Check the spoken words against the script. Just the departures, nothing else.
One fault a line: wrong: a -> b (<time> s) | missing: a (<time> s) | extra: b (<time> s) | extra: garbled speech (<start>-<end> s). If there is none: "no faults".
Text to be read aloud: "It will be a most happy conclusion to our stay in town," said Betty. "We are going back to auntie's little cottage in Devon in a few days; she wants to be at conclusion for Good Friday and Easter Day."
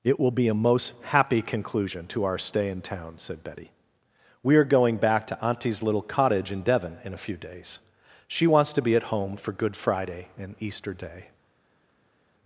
wrong: conclusion -> home (9.1 s)